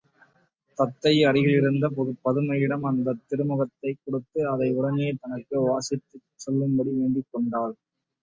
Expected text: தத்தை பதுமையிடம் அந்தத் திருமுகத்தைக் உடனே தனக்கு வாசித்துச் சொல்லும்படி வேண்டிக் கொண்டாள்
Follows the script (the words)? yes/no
no